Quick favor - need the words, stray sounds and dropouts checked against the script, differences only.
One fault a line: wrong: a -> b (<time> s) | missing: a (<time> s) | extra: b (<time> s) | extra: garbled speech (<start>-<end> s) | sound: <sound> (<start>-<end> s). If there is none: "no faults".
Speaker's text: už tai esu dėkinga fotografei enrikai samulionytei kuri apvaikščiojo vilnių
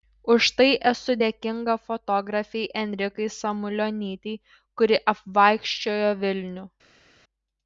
no faults